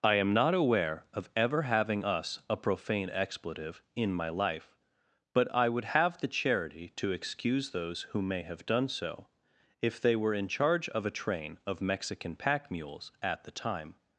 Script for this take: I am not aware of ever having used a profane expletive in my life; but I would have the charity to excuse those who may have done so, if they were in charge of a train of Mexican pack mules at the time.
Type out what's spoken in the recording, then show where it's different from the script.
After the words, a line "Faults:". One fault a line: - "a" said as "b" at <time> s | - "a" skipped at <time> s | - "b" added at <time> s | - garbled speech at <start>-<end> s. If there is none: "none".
I am not aware of ever having us a profane expletive in my life; but I would have the charity to excuse those who may have done so, if they were in charge of a train of Mexican pack mules at the time.
Faults:
- "used" said as "us" at 2.0 s